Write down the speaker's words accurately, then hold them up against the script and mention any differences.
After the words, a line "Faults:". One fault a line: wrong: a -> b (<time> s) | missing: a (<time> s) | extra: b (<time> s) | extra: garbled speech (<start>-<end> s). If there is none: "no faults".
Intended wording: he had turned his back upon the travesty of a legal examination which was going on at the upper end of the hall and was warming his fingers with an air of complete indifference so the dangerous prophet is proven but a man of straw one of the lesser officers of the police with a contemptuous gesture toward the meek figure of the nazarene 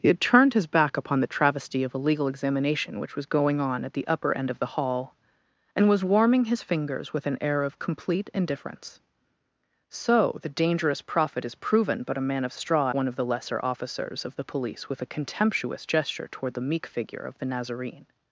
he had turned his back upon the travesty of a legal examination which was going on at the upper end of the hall and was warming his fingers with an air of complete indifference so the dangerous prophet is proven but a man of straw one of the lesser officers of the police with a contemptuous gesture toward the meek figure of the nazarene
Faults:
no faults